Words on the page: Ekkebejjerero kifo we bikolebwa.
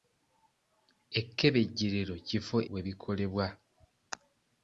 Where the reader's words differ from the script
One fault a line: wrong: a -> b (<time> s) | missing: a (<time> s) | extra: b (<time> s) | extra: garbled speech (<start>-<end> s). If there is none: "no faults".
no faults